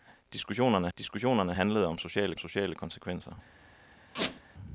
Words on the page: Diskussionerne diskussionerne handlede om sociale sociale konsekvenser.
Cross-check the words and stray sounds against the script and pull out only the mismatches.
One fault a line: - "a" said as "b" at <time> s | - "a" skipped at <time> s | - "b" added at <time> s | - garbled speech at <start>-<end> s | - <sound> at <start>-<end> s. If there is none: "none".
- squeak at 4.1-4.4 s